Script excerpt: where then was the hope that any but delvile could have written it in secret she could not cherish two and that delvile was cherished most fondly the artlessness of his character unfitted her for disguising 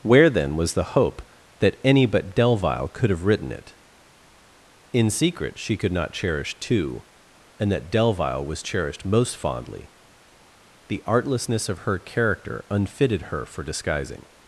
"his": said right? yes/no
no